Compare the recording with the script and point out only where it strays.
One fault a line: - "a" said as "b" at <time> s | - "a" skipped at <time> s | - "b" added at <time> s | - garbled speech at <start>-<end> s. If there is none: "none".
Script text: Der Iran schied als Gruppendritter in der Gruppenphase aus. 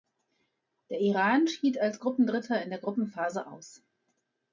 none